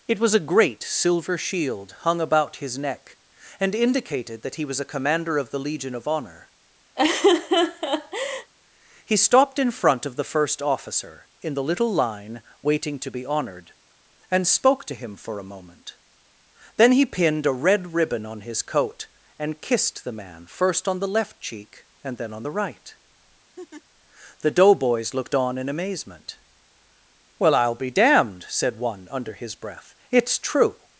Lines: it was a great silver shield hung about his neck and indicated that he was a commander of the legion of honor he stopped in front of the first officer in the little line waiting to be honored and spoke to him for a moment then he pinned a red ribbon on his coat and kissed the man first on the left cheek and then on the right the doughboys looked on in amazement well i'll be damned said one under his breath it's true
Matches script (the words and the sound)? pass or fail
fail